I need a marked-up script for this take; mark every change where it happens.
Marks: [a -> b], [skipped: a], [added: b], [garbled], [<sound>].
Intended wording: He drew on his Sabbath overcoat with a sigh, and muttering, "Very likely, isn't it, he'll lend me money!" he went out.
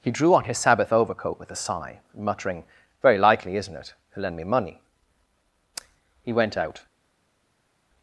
He drew on his Sabbath overcoat with a sigh, [skipped: and] muttering, "Very likely, isn't it, he'll lend me money!" he went out.